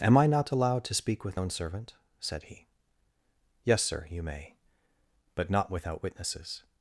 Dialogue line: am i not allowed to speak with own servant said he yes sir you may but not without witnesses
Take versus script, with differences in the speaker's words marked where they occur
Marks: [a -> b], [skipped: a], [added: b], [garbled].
am i not allowed to speak with own servant said he yes sir you may but not without witnesses